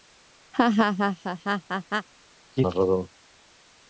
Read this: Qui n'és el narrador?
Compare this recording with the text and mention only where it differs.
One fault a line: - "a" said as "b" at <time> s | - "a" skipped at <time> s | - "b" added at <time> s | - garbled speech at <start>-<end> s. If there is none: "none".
- "n'és el" skipped at 2.6 s